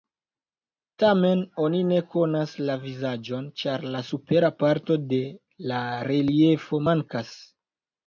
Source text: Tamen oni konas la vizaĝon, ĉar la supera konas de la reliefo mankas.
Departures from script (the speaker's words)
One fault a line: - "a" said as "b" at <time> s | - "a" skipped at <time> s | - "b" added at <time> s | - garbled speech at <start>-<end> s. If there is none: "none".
- "ne" added at 1.9 s
- "konas" said as "parto" at 4.7 s